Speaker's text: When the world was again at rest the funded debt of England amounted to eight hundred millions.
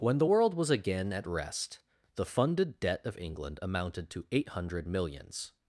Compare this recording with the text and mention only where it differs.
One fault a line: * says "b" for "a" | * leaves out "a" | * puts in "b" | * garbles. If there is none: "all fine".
all fine